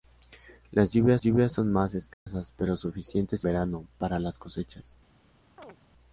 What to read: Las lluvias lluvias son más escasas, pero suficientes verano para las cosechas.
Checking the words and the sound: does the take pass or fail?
fail